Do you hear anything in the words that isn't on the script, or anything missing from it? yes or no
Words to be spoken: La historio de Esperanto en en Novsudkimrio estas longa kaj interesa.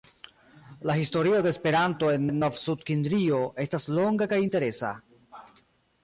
no